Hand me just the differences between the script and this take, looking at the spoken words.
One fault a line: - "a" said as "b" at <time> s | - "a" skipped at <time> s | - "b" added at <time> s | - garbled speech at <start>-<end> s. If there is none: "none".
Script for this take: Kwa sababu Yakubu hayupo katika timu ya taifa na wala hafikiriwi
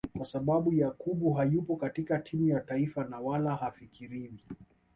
none